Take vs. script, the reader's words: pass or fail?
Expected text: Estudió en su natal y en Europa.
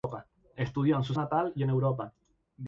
pass